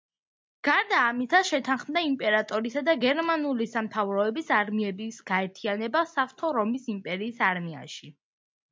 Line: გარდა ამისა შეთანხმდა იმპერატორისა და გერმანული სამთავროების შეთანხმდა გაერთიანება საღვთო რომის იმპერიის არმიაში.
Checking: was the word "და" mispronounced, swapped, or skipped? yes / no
no